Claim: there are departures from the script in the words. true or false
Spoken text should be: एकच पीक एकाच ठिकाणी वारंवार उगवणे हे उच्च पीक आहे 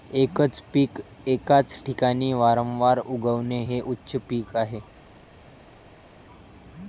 false